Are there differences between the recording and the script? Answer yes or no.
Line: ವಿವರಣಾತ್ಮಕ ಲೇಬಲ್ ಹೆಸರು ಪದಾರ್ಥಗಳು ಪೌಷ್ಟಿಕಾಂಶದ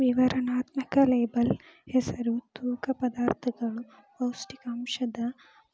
yes